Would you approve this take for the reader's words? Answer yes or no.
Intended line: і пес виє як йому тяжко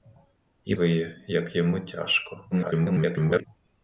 no